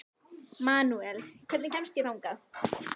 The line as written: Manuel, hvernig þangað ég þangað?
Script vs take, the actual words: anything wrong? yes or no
yes